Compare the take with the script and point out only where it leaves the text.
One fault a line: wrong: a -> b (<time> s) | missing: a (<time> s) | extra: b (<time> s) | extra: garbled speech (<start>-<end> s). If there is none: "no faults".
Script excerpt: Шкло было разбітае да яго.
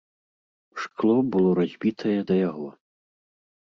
no faults